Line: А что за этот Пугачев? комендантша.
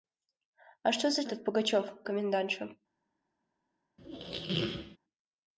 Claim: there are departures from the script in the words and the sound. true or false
true